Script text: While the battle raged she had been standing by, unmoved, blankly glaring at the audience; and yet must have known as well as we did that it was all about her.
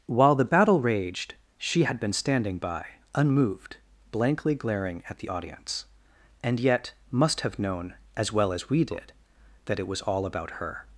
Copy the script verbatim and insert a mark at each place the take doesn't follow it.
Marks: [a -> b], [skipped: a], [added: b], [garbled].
While the battle raged she had been standing by, unmoved, blankly glaring at the audience; and yet must have known as well as we did that it was all about her.